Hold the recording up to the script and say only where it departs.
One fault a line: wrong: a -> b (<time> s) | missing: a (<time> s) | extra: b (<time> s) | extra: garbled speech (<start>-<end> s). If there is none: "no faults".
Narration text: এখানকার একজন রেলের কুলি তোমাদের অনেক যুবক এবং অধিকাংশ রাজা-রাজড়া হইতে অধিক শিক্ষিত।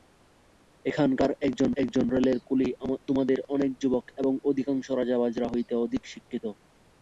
extra: একজন (1.8 s)